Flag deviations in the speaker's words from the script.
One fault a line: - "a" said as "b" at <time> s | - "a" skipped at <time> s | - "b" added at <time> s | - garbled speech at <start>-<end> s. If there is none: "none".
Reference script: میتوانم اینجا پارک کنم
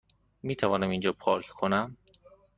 none